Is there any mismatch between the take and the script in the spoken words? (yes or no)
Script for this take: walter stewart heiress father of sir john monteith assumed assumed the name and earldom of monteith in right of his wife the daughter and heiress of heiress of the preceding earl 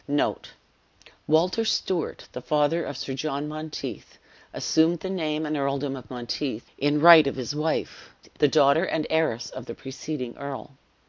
yes